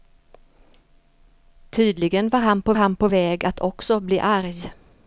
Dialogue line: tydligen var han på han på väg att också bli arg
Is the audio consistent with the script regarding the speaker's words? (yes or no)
yes